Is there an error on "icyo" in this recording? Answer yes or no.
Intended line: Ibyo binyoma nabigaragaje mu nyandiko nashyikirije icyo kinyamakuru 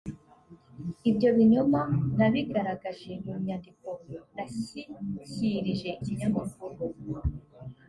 yes